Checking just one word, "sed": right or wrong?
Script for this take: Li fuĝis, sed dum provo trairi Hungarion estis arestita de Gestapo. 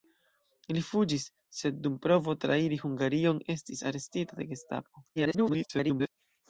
right